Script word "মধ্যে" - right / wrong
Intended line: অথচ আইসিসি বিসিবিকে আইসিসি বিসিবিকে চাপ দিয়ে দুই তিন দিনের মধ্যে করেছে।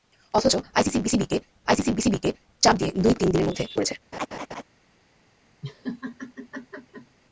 right